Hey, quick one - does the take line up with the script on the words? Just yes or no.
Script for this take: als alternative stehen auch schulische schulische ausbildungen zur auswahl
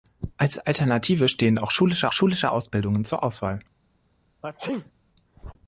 yes